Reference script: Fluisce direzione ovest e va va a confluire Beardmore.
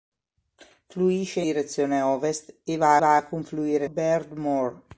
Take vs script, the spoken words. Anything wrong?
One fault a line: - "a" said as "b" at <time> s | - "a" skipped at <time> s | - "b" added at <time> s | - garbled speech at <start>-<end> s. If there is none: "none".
none